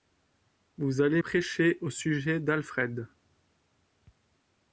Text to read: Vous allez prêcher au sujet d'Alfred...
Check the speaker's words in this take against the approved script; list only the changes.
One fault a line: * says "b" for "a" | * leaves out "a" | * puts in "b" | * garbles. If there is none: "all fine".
all fine